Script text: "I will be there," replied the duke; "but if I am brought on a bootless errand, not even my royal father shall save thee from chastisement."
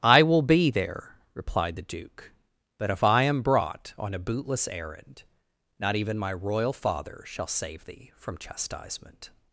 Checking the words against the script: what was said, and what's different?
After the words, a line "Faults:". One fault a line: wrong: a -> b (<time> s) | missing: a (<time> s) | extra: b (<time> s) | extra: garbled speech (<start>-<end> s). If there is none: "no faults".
"I will be there," replied the duke; "but if I am brought on a bootless errand, not even my royal father shall save thee from chastisement."
Faults:
no faults